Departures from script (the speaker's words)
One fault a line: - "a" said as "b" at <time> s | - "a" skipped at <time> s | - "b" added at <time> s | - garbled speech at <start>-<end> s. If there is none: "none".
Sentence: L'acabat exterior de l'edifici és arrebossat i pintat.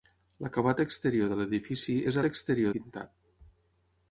- "arrebossat" said as "exterior" at 2.3 s